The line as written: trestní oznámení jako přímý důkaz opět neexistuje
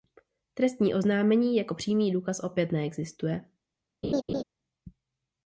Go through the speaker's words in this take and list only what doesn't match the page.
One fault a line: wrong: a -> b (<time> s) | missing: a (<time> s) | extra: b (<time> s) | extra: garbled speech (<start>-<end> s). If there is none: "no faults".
no faults